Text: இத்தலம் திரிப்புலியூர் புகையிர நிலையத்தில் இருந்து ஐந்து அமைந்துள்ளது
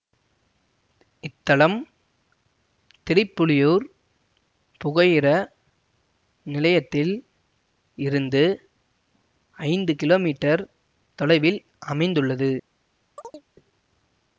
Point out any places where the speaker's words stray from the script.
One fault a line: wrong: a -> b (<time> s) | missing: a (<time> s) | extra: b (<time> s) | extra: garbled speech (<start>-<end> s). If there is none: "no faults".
extra: கிலோமீட்டர் தொலைவில் (10.0 s)